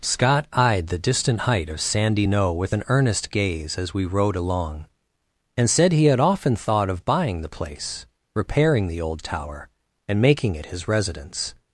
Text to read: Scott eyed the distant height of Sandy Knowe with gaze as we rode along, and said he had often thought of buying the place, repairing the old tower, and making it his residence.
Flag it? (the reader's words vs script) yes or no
yes